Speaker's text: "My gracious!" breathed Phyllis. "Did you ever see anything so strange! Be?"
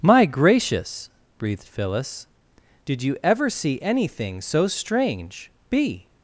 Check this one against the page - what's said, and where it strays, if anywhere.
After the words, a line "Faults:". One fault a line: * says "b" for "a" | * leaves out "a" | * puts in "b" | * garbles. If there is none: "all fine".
"My gracious!" breathed Phyllis. "Did you ever see anything so strange! Be?"
Faults:
all fine